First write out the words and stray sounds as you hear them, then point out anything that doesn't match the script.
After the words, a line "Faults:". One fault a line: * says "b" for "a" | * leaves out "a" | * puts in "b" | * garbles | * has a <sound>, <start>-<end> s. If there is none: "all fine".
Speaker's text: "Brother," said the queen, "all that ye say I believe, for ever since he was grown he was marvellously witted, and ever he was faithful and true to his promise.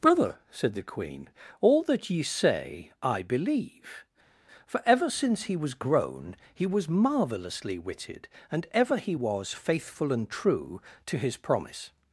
"Brother," said the queen, "all that ye say I believe, for ever since he was grown he was marvellously witted, and ever he was faithful and true to his promise.
Faults:
all fine